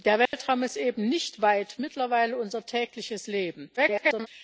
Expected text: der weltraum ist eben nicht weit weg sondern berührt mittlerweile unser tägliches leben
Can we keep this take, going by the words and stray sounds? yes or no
no